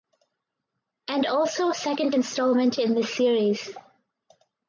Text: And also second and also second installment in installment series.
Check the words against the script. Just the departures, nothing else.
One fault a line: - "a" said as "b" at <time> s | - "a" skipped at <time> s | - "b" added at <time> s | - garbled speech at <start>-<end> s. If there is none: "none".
- "and also second" skipped at 2.1 s
- "installment" said as "this" at 2.9 s